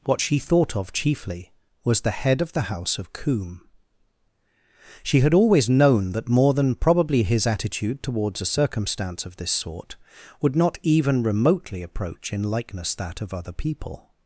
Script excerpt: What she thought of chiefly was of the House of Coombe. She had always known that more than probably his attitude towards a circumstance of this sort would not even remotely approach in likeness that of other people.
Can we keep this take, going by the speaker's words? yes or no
no